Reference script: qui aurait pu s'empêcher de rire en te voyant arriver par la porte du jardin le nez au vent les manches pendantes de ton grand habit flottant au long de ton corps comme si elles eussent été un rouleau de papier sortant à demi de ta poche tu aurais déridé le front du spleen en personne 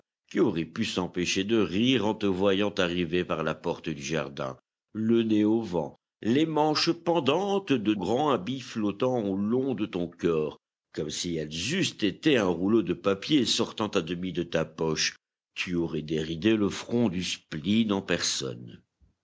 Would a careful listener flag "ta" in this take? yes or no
no